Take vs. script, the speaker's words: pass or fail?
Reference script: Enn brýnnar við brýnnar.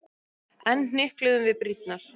fail